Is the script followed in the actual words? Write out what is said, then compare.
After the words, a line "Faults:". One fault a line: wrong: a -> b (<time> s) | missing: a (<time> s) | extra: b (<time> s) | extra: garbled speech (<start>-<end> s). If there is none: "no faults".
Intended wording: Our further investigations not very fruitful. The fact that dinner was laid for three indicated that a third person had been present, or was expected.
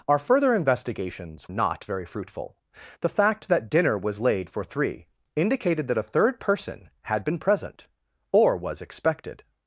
Our further investigations not very fruitful. The fact that dinner was laid for three indicated that a third person had been present, or was expected.
Faults:
no faults